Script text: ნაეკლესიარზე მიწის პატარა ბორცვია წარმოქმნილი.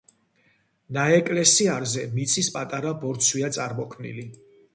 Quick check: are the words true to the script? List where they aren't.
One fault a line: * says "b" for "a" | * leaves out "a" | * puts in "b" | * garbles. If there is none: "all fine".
all fine